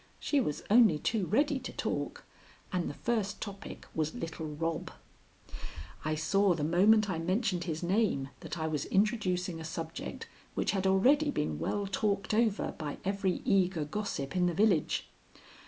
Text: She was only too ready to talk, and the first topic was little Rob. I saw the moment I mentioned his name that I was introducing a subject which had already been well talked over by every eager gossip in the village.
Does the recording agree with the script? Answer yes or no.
yes